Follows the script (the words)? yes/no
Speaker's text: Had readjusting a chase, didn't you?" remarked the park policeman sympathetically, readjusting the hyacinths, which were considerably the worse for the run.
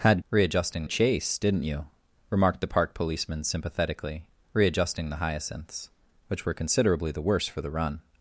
yes